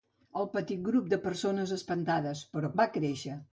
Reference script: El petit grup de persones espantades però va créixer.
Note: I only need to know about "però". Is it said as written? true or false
true